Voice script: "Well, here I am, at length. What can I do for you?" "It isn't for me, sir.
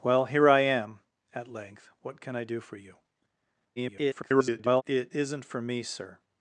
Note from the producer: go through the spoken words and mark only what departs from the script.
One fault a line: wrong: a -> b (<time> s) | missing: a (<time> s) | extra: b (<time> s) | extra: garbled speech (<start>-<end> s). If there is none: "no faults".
extra: garbled speech (3.8-4.8 s)